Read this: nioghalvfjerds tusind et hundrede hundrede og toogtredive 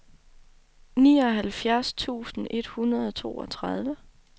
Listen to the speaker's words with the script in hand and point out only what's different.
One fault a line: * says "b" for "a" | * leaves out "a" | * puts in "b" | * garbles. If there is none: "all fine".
* leaves out "hundrede"